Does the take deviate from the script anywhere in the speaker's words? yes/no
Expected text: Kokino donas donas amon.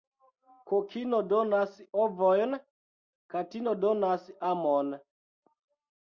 yes